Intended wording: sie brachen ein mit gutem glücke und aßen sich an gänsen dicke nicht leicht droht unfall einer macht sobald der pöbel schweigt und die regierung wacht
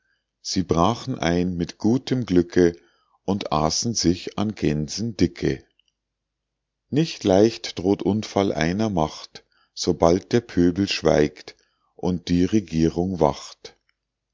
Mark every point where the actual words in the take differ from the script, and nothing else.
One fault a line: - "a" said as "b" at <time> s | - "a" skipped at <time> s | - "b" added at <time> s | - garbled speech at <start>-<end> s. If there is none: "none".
none